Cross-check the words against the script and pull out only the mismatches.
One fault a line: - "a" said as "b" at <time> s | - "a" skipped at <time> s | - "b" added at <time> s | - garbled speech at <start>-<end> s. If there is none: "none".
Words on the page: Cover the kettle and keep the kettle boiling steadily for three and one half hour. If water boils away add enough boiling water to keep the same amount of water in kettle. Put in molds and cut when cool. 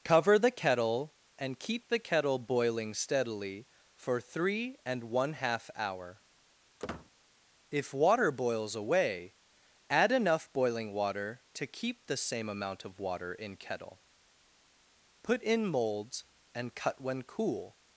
none